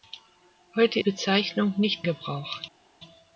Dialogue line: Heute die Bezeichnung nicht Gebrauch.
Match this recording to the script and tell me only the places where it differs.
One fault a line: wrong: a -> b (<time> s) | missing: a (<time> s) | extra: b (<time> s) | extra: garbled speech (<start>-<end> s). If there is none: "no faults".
no faults